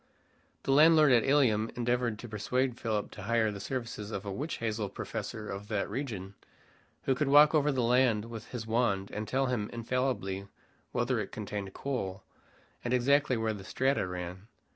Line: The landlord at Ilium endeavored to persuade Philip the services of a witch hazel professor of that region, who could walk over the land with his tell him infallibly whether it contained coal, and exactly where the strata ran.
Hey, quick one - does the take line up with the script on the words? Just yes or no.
no